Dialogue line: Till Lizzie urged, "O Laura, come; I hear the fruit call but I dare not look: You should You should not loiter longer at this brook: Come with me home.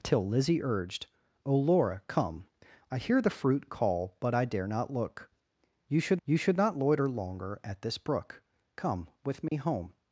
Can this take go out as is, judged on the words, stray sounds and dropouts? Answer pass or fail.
fail